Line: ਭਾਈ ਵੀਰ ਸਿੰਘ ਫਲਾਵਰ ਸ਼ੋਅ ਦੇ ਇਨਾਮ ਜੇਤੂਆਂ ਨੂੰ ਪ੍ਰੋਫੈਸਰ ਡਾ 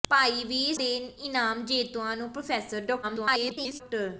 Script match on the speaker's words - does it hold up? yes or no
no